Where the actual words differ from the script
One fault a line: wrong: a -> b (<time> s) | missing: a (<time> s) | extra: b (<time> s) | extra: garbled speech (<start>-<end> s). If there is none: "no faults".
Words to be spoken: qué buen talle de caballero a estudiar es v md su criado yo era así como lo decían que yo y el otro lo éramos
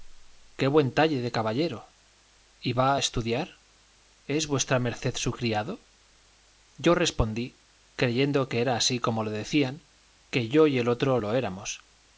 extra: y va (2.6 s)
extra: respondí creyendo que (6.9 s)